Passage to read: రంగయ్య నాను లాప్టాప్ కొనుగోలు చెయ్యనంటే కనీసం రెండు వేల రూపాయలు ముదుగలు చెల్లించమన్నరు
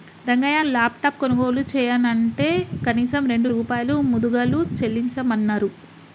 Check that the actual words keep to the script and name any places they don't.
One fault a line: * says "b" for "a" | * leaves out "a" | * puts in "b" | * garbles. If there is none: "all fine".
* leaves out "నాను"
* leaves out "వేల"